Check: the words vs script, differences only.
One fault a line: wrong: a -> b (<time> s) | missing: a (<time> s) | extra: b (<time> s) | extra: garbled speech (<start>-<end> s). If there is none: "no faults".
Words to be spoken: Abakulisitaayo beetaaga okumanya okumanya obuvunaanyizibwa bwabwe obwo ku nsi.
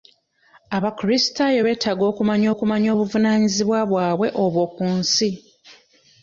no faults